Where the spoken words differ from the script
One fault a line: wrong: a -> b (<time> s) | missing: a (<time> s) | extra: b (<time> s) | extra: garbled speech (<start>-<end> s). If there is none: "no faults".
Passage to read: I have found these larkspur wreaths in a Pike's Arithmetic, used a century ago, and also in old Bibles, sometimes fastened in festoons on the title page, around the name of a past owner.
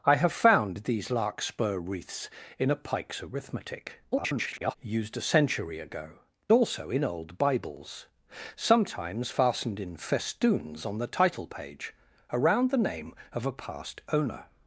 extra: garbled speech (4.1-4.8 s)
missing: and (6.2 s)